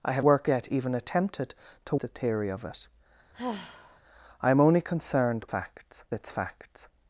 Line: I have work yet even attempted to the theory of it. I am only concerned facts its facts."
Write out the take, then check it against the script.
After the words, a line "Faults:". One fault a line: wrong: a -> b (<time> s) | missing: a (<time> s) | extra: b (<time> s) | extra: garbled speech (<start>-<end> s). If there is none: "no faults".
I have work yet even attempted to the theory of it. I am only concerned facts its facts."
Faults:
no faults